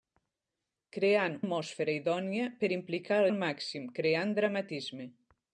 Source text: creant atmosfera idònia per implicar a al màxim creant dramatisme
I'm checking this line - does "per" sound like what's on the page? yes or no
yes